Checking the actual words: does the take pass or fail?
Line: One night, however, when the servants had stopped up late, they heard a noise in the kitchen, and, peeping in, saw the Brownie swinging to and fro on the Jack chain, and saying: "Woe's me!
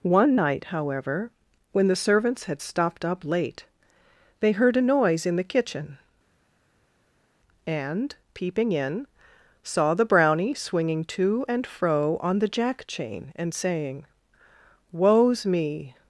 pass